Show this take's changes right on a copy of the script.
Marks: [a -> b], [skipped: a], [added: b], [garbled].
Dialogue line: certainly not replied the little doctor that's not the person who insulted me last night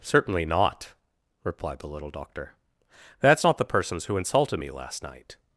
certainly not replied the little doctor that's not the [person -> persons] who insulted me last night